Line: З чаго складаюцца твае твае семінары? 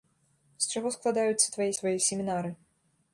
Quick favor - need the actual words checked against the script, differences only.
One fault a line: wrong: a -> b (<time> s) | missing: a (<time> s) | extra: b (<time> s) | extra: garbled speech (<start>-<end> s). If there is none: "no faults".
no faults